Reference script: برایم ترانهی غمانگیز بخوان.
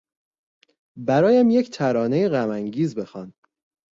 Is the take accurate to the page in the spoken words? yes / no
no